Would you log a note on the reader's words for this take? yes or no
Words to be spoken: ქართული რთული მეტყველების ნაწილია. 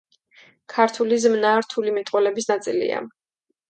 yes